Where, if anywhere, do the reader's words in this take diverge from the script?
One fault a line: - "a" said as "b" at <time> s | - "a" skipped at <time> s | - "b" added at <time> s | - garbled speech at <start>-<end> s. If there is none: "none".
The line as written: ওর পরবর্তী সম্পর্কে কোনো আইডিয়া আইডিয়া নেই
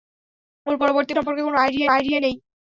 none